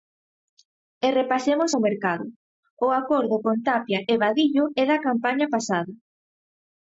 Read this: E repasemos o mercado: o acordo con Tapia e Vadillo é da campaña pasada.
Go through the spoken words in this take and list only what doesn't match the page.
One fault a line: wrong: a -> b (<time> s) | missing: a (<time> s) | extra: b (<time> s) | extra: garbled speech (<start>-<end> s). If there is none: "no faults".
no faults